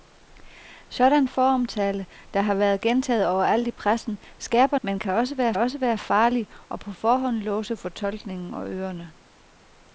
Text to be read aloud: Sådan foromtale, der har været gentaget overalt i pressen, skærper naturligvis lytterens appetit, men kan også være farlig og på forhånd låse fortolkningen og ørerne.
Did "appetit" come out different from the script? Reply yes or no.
yes